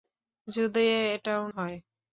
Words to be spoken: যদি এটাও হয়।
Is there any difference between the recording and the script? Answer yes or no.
no